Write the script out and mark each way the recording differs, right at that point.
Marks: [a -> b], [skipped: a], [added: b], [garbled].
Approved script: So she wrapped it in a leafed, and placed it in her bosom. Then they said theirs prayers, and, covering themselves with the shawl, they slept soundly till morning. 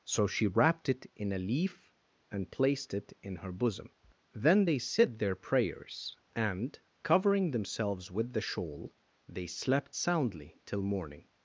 So she wrapped it in a [leafed, -> leaf] and placed it in her bosom. Then they said [theirs -> their] prayers, and, covering themselves with the shawl, they slept soundly till morning.